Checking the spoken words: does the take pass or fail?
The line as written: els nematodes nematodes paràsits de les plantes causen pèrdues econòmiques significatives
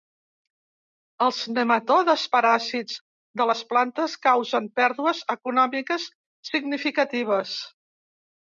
fail